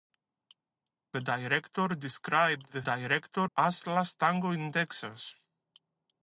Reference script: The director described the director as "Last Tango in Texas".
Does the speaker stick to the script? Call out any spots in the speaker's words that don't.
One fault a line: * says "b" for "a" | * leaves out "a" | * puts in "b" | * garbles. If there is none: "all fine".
all fine